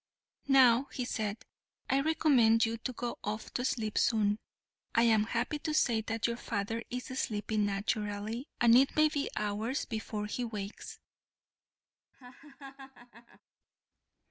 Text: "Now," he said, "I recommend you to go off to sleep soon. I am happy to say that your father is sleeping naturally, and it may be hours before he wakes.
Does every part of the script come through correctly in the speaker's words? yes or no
yes